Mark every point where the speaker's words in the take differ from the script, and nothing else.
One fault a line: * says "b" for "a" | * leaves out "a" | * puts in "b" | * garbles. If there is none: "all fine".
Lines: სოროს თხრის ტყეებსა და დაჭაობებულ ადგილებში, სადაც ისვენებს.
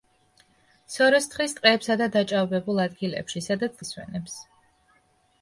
all fine